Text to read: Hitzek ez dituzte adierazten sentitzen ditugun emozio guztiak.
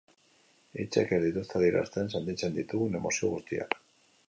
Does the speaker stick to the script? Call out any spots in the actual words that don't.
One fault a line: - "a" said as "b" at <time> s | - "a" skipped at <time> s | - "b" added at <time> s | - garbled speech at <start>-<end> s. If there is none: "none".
none